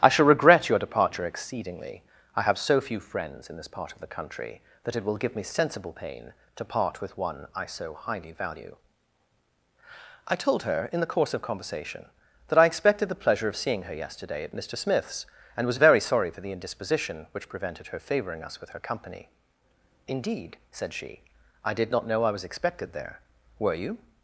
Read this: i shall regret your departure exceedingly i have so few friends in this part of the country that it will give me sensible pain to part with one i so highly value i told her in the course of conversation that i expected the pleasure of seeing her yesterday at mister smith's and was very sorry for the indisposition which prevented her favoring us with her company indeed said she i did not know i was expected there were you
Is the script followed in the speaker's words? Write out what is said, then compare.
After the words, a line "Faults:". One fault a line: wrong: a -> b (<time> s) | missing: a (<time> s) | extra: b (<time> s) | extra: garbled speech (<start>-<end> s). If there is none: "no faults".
i shall regret your departure exceedingly i have so few friends in this part of the country that it will give me sensible pain to part with one i so highly value i told her in the course of conversation that i expected the pleasure of seeing her yesterday at mister smith's and was very sorry for the indisposition which prevented her favoring us with her company indeed said she i did not know i was expected there were you
Faults:
no faults